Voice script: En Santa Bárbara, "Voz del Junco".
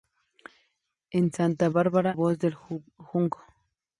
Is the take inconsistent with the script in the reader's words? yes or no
no